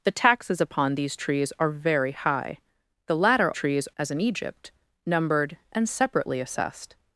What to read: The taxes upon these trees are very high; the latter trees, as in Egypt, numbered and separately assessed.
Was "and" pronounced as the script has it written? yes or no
yes